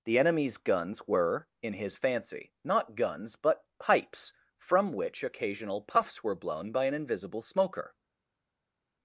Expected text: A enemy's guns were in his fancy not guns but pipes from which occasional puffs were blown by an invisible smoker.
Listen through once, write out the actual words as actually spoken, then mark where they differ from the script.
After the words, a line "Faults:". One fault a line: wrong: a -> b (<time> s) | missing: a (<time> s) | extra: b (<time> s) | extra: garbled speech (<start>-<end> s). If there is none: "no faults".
The enemy's guns were in his fancy not guns but pipes from which occasional puffs were blown by an invisible smoker.
Faults:
wrong: A -> The (0.1 s)